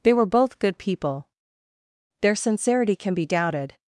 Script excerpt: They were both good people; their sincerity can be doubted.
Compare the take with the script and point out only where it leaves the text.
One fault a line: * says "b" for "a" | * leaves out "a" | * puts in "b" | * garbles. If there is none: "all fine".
all fine